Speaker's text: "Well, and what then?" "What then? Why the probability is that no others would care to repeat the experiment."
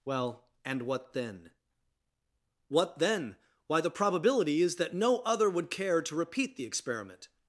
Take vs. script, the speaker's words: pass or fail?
fail